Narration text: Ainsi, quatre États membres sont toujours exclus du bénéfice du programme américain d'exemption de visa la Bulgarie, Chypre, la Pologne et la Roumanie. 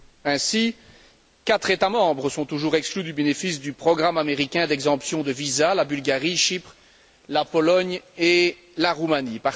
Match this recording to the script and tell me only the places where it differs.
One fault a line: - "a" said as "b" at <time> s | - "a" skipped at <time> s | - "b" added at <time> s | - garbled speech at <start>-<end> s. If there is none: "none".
none